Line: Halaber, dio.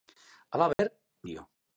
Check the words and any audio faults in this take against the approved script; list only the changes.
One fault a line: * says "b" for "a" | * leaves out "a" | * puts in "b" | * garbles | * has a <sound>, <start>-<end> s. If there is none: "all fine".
* has a dropout, 0.7-0.8 s